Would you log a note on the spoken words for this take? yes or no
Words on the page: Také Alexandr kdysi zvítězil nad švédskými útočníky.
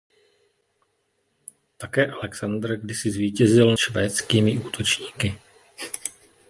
yes